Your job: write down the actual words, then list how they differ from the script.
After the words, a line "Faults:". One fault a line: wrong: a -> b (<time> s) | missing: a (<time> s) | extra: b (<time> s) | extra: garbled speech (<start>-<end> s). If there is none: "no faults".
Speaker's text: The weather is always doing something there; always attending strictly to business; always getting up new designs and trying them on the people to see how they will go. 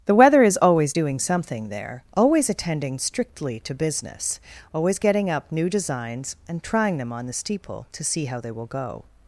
The weather is always doing something there; always attending strictly to business; always getting up new designs and trying them on the steeple to see how they will go.
Faults:
wrong: people -> steeple (7.3 s)